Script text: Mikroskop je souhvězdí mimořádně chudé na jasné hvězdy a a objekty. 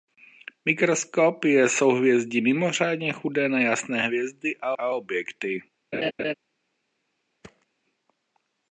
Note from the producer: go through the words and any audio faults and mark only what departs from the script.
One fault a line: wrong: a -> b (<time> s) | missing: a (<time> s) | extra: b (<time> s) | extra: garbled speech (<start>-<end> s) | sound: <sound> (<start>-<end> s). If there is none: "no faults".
sound: laugh (5.9-6.3 s)
sound: thud (7.4-7.7 s)